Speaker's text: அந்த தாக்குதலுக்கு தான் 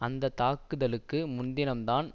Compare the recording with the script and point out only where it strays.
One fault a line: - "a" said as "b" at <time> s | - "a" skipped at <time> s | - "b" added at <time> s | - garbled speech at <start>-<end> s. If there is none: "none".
- "முன்தினம்" added at 1.3 s